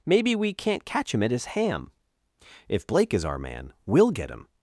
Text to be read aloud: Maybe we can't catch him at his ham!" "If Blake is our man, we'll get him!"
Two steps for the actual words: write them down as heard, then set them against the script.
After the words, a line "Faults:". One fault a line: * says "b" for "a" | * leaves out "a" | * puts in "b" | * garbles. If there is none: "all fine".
Maybe we can't catch him at his ham!" "If Blake is our man, we'll get him!"
Faults:
all fine